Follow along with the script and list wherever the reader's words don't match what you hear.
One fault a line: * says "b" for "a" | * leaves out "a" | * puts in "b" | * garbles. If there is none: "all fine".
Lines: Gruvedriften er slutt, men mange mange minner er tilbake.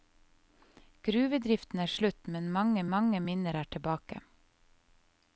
all fine